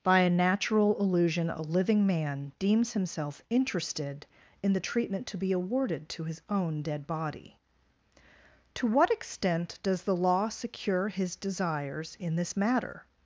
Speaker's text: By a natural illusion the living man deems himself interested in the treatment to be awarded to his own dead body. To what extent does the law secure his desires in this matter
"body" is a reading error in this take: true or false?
false